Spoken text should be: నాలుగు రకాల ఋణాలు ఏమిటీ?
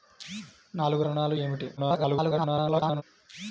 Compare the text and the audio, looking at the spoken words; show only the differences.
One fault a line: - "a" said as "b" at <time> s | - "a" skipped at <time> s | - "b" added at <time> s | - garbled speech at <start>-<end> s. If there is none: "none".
- "రకాల" skipped at 1.0 s
- garbled speech at 1.8-3.0 s